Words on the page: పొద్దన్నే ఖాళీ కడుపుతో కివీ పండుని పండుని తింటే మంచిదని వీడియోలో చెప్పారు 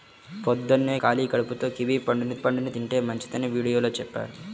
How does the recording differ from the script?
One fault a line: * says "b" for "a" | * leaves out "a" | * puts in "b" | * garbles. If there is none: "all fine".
all fine